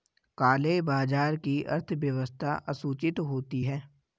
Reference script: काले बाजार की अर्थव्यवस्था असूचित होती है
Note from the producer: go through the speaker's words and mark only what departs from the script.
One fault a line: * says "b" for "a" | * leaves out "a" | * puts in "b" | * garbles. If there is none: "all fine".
all fine